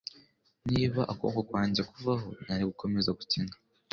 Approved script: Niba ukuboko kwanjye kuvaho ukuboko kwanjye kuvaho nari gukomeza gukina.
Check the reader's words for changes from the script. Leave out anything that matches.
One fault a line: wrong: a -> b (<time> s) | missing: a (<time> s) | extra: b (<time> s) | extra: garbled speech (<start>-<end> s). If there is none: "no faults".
missing: ukuboko kwanjye kuvaho (2.3 s)